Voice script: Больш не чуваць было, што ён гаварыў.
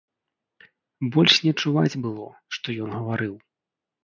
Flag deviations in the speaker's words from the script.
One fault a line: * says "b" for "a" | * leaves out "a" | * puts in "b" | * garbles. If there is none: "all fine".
all fine